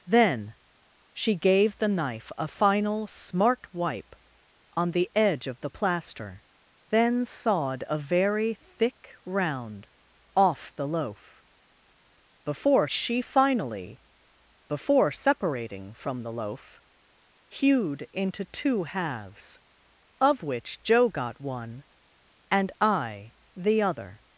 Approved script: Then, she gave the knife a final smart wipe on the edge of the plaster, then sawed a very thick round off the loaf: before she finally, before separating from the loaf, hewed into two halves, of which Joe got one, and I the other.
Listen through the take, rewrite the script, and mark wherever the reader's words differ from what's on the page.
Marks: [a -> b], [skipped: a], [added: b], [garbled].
Then, she gave the knife a final smart wipe on the edge of the plaster, then sawed a very thick round off the loaf: before she finally, before separating from the loaf, hewed into two halves, of which Joe got one, and I the other.